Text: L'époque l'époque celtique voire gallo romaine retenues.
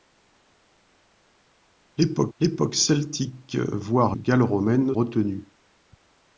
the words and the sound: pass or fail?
pass